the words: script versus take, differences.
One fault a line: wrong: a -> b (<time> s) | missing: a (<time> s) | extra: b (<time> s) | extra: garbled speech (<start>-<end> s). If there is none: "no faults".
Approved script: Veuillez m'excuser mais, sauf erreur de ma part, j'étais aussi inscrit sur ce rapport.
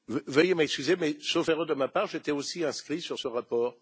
no faults